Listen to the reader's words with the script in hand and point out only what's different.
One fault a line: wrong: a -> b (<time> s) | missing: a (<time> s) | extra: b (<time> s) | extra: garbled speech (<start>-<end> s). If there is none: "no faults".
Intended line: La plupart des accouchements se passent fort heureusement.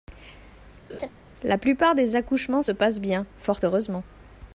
extra: bien (3.0 s)